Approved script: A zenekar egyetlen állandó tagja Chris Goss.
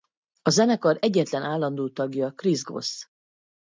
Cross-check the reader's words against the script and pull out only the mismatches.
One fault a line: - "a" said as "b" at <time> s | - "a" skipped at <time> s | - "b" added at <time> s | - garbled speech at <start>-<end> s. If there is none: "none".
none